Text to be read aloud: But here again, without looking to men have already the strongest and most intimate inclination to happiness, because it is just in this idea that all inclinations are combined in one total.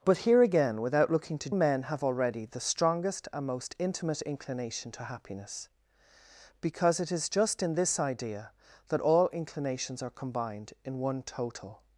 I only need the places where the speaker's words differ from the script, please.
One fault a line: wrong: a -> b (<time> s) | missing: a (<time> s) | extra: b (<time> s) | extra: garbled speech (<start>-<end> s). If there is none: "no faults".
no faults